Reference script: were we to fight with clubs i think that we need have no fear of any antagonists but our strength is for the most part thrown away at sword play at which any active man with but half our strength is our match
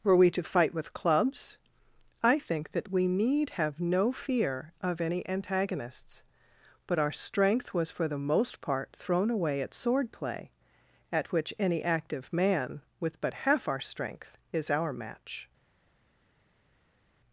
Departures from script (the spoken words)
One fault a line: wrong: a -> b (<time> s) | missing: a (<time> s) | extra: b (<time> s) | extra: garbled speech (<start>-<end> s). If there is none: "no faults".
wrong: is -> was (7.7 s)